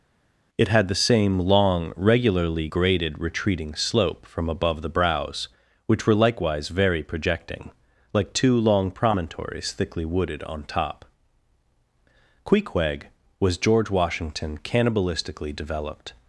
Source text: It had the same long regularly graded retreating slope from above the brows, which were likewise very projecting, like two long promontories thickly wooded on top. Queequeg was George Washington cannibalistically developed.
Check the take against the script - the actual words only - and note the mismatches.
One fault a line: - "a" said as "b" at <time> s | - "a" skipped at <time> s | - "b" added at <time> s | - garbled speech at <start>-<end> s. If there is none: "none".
none